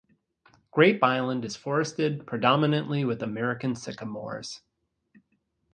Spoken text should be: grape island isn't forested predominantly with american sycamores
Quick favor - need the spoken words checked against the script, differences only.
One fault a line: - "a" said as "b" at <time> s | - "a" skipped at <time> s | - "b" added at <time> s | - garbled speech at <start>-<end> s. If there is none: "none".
- "isn't" said as "is" at 1.4 s